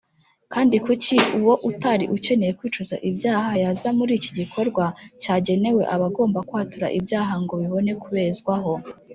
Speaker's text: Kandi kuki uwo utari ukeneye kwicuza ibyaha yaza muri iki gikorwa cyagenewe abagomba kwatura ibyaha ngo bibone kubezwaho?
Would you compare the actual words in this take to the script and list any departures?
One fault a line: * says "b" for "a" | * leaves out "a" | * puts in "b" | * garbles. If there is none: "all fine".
all fine